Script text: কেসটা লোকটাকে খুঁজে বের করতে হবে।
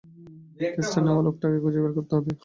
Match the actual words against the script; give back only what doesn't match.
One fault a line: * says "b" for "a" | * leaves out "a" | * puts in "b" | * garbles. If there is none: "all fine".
* puts in "নেওয়া"